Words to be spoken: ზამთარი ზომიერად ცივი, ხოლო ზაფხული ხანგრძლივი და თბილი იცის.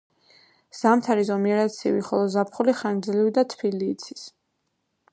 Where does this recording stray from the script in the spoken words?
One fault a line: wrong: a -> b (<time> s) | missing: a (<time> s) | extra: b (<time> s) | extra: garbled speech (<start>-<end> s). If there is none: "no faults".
no faults